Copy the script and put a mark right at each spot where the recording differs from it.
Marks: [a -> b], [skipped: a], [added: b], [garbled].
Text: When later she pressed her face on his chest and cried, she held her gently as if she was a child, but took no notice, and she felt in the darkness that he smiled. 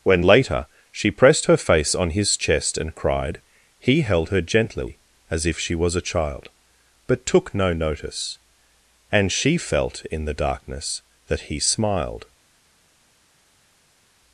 When later she pressed her face on his chest and cried, [she -> he] held her gently as if she was a child, but took no notice, and she felt in the darkness that he smiled.